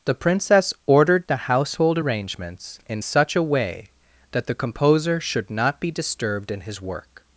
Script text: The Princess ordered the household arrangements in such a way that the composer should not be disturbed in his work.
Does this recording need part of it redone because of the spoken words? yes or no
no